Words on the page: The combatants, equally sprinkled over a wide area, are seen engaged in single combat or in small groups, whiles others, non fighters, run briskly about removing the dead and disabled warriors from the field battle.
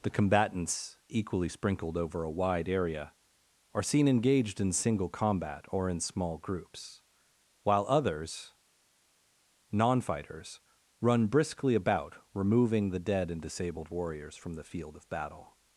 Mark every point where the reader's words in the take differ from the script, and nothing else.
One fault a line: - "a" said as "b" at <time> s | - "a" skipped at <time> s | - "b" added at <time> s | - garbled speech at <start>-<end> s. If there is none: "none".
- "whiles" said as "while" at 7.6 s
- "of" added at 15.0 s